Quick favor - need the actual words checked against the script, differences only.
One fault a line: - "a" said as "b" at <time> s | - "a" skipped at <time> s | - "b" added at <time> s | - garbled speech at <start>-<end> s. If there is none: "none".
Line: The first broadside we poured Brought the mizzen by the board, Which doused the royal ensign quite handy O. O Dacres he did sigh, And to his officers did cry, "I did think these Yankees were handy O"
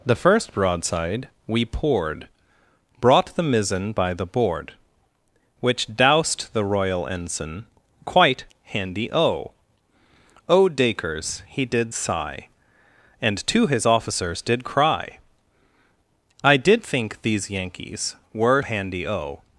none